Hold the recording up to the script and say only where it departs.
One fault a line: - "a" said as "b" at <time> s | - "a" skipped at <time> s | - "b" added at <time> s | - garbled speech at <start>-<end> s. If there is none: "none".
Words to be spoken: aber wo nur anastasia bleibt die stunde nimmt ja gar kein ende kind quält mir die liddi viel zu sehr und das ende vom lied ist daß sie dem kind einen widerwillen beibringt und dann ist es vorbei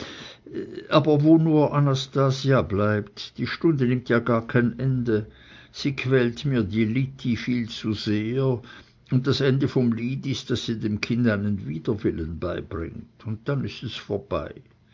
- "kind" said as "sie" at 5.7 s